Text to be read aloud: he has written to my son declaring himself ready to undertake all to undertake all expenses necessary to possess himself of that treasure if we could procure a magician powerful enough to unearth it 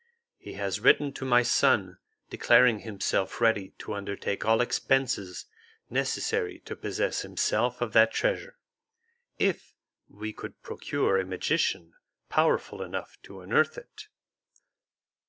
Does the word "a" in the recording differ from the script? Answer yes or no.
no